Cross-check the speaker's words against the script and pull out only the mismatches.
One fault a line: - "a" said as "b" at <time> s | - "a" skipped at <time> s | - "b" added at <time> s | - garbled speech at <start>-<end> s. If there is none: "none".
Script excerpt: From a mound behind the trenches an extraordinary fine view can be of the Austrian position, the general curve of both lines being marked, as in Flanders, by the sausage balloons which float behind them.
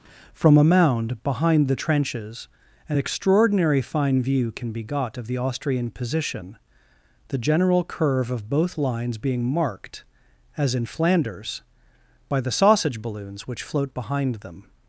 - "got" added at 4.8 s